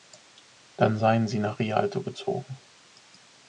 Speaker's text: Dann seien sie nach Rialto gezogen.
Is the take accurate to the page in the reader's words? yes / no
yes